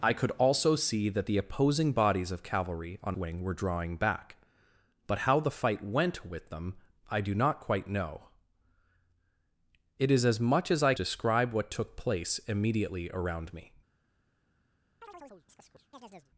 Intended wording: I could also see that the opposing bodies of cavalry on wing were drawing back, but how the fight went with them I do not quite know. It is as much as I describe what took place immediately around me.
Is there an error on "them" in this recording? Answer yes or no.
no